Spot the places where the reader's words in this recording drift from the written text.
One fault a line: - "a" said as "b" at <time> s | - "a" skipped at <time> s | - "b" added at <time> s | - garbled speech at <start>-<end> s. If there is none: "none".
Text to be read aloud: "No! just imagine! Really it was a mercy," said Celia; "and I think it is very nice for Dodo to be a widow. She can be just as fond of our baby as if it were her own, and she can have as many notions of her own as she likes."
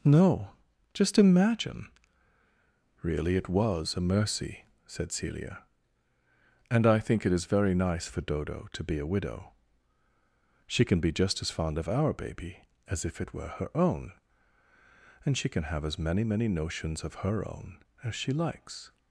- "many" added at 16.2 s